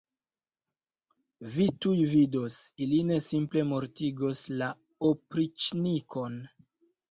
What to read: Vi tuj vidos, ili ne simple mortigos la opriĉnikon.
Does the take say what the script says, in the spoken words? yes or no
yes